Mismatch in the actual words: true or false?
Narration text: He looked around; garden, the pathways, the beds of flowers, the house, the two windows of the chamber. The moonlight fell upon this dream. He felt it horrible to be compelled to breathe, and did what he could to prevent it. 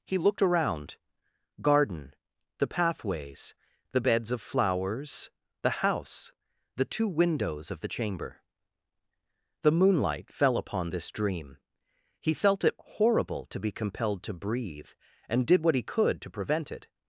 false